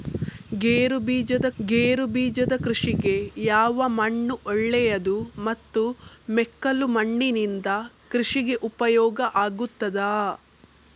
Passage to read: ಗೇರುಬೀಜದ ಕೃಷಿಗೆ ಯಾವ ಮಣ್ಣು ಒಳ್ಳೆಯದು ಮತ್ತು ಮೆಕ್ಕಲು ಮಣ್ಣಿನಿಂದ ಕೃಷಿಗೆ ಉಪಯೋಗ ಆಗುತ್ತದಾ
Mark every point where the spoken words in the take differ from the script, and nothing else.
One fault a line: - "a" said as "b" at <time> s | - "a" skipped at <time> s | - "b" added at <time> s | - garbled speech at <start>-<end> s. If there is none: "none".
- "ಗೇರುಬೀಜದ" added at 1.6 s